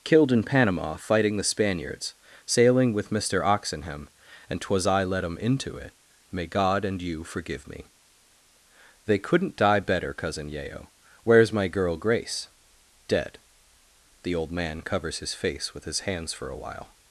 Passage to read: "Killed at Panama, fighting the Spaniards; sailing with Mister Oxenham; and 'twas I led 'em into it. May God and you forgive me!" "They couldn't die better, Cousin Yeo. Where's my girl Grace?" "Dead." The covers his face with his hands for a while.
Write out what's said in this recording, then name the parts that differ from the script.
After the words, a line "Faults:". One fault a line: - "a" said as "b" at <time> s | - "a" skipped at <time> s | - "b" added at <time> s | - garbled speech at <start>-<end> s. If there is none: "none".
"Killed in Panama, fighting the Spaniards; sailing with Mister Oxenham; and 'twas I led 'em into it. May God and you forgive me!" "They couldn't die better, Cousin Yeo. Where's my girl Grace?" "Dead." The old man covers his face with his hands for a while.
Faults:
- "at" said as "in" at 0.3 s
- "old man" added at 14.3 s